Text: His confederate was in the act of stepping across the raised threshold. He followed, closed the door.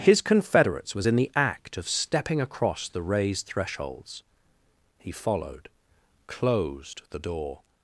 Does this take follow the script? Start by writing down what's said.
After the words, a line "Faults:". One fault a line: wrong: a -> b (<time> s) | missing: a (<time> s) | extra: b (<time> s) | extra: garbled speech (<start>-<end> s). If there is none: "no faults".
His confederates was in the act of stepping across the raised thresholds. He followed, closed the door.
Faults:
wrong: confederate -> confederates (0.2 s)
wrong: threshold -> thresholds (3.5 s)